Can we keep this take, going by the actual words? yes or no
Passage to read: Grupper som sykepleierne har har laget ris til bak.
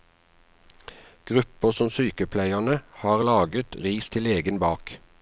no